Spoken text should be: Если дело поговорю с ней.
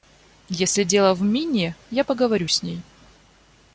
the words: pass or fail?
fail